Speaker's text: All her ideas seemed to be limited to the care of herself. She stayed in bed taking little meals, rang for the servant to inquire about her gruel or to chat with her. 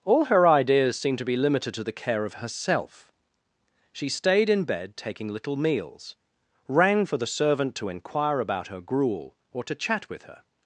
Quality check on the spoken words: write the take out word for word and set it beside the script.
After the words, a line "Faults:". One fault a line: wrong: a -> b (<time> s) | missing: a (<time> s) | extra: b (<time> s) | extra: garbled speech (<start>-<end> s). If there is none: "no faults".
All her ideas seemed to be limited to the care of herself. She stayed in bed taking little meals, rang for the servant to inquire about her gruel or to chat with her.
Faults:
no faults